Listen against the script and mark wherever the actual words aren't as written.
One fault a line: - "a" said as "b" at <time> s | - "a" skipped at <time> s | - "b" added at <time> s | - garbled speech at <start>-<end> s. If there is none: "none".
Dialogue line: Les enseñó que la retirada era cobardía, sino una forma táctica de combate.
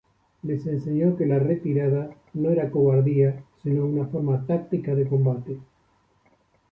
- "no" added at 2.3 s